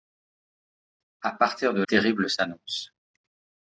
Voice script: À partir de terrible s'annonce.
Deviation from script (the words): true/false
false